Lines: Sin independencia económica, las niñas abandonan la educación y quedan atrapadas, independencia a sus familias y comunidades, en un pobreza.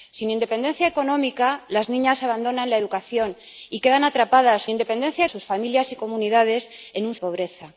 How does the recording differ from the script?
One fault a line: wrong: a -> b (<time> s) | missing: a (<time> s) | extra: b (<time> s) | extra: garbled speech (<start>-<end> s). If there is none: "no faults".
no faults